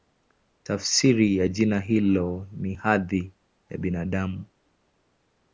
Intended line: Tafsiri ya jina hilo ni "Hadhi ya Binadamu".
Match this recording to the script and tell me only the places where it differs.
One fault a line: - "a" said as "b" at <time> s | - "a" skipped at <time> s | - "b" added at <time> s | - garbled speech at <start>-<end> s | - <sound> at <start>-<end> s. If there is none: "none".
none